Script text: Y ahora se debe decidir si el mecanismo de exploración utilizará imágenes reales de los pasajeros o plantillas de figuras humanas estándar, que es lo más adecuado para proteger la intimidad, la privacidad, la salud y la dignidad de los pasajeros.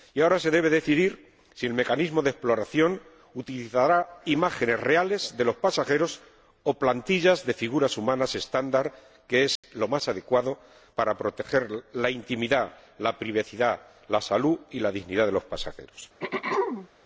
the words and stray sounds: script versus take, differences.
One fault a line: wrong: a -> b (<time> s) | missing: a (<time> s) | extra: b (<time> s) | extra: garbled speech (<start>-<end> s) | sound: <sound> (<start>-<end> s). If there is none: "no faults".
sound: dropout (9.6-9.6 s)
sound: throat clearing (16.2-16.9 s)